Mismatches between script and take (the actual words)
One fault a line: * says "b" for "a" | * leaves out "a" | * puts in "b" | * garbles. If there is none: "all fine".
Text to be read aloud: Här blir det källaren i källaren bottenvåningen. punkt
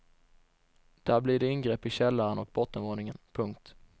* says "Där" for "Här"
* says "ingrepp" for "källaren"
* puts in "och"